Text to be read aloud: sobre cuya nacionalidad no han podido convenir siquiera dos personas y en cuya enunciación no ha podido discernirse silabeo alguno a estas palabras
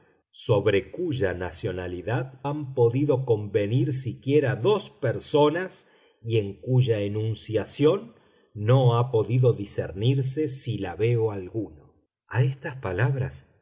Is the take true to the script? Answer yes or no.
no